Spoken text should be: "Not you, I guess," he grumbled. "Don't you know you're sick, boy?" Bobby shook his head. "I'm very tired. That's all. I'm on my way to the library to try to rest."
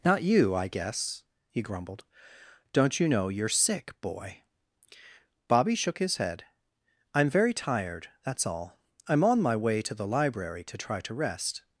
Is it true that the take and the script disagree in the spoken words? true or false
false